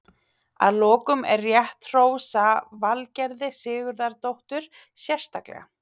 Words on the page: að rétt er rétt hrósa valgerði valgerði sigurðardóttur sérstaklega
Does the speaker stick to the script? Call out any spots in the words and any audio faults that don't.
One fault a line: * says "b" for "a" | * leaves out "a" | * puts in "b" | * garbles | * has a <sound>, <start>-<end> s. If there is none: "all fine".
* says "lokum" for "rétt"
* leaves out "valgerði"